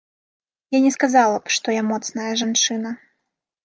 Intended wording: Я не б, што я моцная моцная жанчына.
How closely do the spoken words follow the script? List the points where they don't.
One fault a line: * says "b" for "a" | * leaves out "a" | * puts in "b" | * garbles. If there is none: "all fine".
* puts in "сказала"
* leaves out "моцная"